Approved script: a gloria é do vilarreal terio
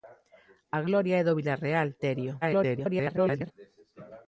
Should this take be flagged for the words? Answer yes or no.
yes